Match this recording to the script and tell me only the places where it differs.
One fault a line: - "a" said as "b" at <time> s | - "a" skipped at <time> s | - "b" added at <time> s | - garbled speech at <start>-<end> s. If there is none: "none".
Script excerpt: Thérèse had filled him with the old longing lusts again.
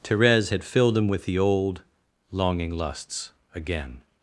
none